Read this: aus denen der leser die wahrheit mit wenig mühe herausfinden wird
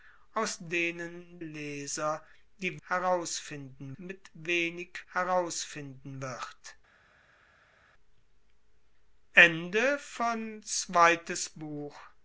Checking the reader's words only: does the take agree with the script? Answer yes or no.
no